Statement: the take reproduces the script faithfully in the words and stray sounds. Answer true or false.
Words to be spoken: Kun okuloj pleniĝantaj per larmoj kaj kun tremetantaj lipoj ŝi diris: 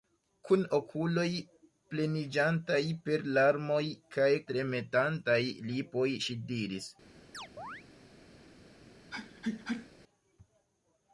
false